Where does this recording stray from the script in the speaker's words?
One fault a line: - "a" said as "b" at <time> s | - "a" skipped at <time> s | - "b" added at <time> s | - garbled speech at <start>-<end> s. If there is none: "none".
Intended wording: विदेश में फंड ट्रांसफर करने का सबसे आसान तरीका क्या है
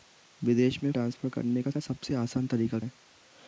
- "फंड" skipped at 0.9 s
- "का" added at 1.7 s
- "क्या" skipped at 2.8 s